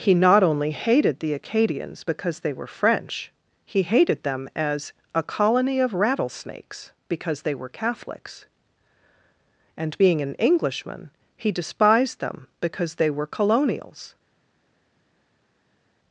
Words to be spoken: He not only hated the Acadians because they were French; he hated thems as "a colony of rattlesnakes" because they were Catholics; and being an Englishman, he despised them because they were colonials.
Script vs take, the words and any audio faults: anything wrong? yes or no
yes